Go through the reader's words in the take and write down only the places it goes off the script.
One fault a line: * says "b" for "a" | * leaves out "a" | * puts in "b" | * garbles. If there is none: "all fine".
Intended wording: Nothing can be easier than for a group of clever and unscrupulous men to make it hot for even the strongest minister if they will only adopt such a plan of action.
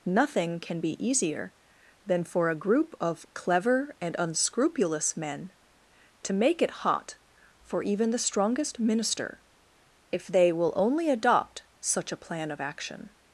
all fine